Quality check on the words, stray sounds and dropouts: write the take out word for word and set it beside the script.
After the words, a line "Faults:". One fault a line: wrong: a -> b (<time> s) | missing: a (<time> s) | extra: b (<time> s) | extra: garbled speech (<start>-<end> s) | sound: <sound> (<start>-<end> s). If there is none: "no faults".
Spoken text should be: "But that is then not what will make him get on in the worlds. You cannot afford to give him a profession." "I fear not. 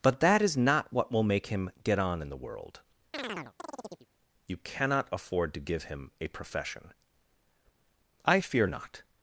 "But that is not what will make him get on in the world. You cannot afford to give him a profession." "I fear not.
Faults:
missing: then (0.6 s)
wrong: worlds -> world (2.4 s)
sound: chirp (3.1-4.1 s)